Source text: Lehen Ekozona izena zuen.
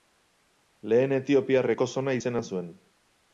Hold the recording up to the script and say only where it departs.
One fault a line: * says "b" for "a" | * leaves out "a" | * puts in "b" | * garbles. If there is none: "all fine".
* puts in "Etiopiar"